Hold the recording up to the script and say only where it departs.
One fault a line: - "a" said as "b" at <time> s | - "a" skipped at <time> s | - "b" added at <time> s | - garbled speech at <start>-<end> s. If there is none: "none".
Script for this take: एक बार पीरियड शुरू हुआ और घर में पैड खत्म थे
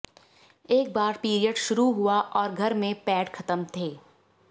none